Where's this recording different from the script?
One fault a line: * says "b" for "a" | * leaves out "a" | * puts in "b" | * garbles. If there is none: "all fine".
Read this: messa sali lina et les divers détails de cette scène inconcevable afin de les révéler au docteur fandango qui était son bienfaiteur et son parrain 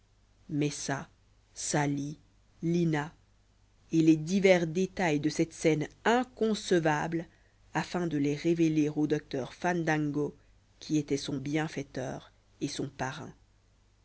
all fine